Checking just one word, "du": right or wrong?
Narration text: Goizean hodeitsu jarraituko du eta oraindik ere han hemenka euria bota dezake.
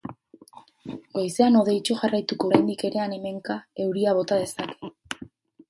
wrong